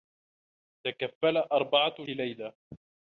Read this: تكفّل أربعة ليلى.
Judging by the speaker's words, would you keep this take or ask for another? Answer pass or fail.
pass